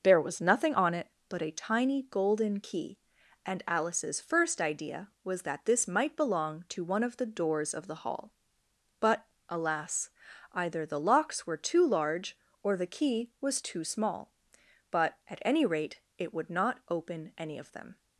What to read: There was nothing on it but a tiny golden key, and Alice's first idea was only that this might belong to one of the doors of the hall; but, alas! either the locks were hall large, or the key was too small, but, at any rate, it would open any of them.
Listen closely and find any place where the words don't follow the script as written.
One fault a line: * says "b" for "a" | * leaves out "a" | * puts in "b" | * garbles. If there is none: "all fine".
* leaves out "only"
* says "too" for "hall"
* puts in "not"